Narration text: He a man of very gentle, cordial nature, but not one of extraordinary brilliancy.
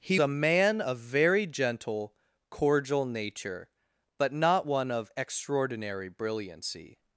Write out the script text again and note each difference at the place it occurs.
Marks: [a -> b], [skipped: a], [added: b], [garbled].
He a man of very gentle, cordial nature, but not one of extraordinary brilliancy.